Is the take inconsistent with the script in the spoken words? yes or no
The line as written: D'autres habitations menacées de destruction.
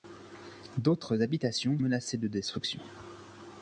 no